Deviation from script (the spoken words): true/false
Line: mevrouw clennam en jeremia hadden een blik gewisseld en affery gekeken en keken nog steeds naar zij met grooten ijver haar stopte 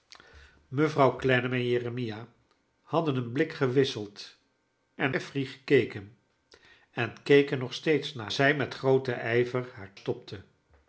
false